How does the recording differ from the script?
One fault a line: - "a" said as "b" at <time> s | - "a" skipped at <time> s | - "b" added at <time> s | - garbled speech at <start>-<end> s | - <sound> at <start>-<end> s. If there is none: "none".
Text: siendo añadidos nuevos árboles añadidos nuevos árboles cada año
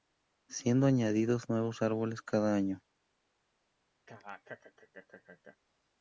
- "añadidos nuevos árboles" skipped at 2.2 s
- laugh at 4.1-5.6 s